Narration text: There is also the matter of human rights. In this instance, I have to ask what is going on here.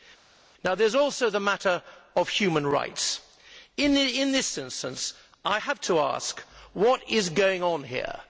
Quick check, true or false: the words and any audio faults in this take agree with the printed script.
true